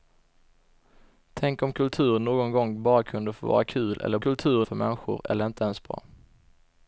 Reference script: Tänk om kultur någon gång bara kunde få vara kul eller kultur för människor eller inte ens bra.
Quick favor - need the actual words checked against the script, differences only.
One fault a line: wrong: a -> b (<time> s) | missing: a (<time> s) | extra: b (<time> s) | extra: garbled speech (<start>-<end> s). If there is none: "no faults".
no faults